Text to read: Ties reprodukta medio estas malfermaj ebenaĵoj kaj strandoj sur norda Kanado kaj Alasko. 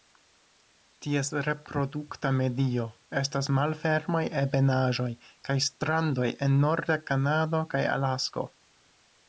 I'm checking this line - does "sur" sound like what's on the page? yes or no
no